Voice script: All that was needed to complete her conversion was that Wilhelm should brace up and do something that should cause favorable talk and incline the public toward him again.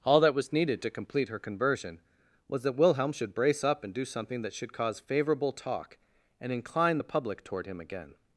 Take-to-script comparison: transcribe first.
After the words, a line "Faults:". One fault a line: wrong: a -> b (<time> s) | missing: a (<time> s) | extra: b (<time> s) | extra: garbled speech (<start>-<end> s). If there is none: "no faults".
All that was needed to complete her conversion was that Wilhelm should brace up and do something that should cause favorable talk and incline the public toward him again.
Faults:
no faults